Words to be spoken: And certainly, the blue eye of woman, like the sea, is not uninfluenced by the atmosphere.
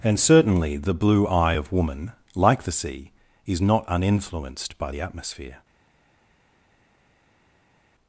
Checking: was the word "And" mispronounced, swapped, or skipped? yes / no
no